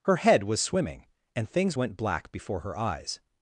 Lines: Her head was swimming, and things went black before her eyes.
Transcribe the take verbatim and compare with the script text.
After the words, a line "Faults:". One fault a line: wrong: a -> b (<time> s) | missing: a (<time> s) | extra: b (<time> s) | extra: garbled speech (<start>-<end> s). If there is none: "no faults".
Her head was swimming, and things went black before her eyes.
Faults:
no faults